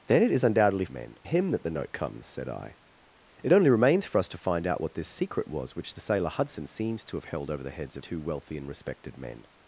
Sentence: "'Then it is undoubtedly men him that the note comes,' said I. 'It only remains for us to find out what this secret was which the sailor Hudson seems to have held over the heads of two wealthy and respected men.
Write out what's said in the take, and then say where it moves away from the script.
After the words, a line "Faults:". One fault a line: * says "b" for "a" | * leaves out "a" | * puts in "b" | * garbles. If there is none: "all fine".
"'Then it is undoubtedly men him that the note comes,' said I. 'It only remains for us to find out what this secret was which the sailor Hudson seems to have held over the heads of two wealthy and respected men.
Faults:
all fine